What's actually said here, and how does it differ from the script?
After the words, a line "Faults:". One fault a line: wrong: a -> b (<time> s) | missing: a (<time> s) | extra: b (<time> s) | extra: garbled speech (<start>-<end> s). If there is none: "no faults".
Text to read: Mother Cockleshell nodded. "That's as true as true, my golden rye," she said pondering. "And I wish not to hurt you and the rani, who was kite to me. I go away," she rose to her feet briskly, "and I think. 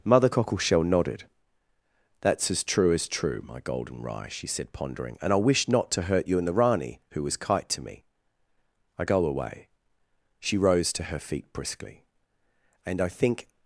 Mother Cockleshell nodded. "That's as true as true, my golden rye," she said pondering. "And I wish not to hurt you and the rani, who was kite to me. I go away," she rose to her feet briskly, "and I think.
Faults:
no faults